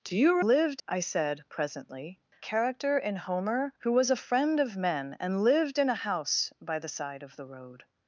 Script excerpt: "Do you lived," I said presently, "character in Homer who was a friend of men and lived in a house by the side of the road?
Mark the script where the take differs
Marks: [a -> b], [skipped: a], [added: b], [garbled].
"Do you lived," I said presently, "character in Homer who was a friend of men and lived in a house by the side of the road?